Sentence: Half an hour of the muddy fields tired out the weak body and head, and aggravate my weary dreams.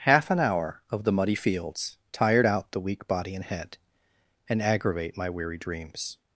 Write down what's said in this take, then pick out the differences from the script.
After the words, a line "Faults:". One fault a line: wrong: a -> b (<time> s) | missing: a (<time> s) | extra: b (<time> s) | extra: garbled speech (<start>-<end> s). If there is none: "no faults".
Half an hour of the muddy fields tired out the weak body and head, and aggravate my weary dreams.
Faults:
no faults